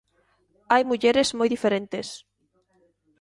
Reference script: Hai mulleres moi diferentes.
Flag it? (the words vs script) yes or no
no